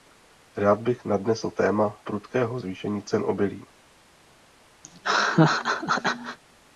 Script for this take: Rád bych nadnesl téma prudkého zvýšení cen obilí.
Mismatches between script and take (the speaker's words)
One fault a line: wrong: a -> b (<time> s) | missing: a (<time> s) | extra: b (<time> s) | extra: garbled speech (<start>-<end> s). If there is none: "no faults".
no faults